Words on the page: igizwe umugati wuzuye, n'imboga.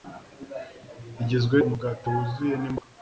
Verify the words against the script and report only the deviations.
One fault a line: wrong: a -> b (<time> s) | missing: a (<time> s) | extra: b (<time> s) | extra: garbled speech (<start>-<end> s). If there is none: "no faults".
no faults